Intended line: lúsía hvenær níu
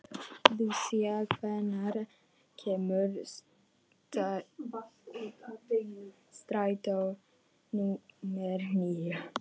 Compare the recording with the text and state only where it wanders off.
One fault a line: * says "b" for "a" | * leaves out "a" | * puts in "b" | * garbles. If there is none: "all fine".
* puts in "kemur strætó númer"